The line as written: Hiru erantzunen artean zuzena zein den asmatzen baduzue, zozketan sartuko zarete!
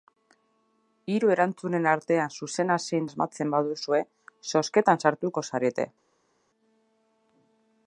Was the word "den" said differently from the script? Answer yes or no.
yes